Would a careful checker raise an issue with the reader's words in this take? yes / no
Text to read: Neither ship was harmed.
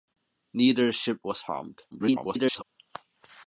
yes